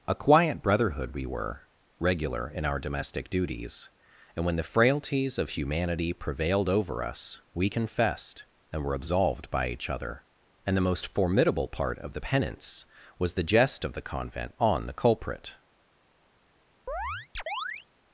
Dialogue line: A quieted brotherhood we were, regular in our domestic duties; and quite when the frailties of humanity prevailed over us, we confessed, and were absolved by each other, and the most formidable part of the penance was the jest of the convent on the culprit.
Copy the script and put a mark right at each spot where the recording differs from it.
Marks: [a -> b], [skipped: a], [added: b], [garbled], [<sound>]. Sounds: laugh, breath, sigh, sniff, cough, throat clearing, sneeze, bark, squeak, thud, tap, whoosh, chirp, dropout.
A [quieted -> quiet] brotherhood we were, regular in our domestic duties; and [skipped: quite] when the frailties of humanity prevailed over us, we confessed, and were absolved by each other, and the most formidable part of the penance was the jest of the convent on the culprit. [chirp]